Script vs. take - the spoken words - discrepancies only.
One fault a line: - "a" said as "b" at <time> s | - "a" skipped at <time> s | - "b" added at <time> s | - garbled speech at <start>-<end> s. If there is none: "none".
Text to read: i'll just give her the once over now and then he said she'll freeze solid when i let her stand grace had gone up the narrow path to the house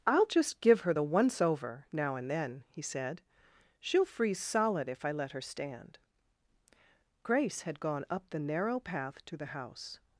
- "when" said as "if" at 4.9 s